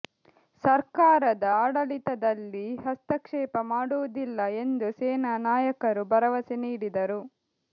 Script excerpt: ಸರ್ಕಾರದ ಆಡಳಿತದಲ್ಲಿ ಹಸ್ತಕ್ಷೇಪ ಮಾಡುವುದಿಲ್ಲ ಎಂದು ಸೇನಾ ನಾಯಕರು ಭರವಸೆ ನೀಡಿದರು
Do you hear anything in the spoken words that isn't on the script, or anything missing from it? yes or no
no